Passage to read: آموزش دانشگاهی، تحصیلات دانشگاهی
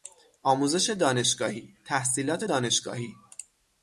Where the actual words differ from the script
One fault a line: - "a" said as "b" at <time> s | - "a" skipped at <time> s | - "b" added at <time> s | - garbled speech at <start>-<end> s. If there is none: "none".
none